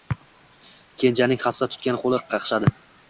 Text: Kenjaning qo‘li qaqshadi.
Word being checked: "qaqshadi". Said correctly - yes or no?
yes